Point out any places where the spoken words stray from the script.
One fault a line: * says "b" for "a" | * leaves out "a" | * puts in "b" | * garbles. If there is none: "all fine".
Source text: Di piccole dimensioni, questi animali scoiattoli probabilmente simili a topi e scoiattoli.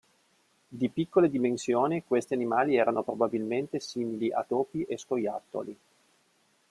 * says "erano" for "scoiattoli"